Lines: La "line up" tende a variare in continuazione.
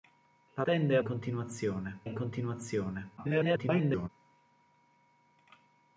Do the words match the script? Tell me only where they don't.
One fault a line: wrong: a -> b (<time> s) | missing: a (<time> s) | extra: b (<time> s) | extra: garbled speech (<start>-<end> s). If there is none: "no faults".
missing: line up (0.7 s)
wrong: variare -> continuazione (1.0 s)
extra: garbled speech (3.2-4.1 s)